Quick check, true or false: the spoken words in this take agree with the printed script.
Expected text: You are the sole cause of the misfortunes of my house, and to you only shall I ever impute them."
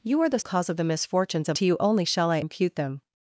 false